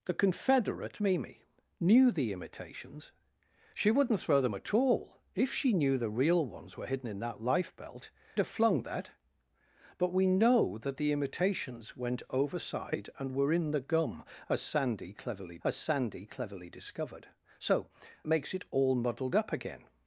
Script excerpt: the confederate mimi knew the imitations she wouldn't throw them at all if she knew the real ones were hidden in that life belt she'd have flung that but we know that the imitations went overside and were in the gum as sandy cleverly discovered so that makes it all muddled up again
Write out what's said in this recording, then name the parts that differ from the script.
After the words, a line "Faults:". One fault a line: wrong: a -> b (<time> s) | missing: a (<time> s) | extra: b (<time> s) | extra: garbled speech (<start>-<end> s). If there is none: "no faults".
the confederate mimi knew the imitations she wouldn't throw them at all if she knew the real ones were hidden in that life belt have flung that but we know that the imitations went overside and were in the gum as sandy cleverly as sandy cleverly discovered so makes it all muddled up again
Faults:
missing: she'd (8.1 s)
extra: as sandy cleverly (15.6 s)
missing: that (17.9 s)